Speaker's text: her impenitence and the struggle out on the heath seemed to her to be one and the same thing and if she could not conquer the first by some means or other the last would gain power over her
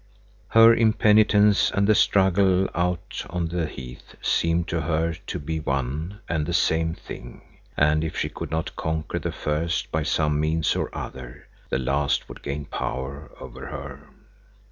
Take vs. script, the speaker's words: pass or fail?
pass